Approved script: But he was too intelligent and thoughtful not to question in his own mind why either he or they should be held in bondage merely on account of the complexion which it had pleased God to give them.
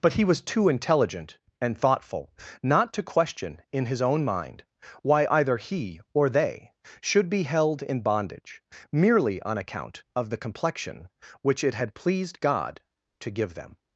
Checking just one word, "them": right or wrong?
right